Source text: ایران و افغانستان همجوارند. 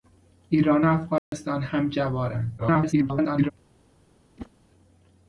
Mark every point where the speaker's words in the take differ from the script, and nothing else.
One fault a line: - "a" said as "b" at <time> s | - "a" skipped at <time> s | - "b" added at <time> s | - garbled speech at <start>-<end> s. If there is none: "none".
- garbled speech at 2.6-3.5 s